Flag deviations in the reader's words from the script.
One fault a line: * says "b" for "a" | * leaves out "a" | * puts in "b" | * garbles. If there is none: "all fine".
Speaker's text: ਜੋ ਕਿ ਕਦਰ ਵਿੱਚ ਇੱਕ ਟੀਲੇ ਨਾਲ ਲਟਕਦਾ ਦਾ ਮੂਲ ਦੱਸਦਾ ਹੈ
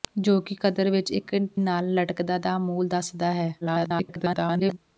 * leaves out "ਟੀਲੇ"
* garbles